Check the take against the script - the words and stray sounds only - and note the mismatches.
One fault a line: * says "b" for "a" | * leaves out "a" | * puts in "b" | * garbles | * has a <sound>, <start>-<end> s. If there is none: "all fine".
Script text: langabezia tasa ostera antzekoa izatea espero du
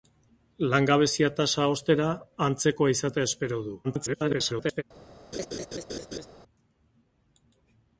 * garbles
* has a laugh, 5.3-6.3 s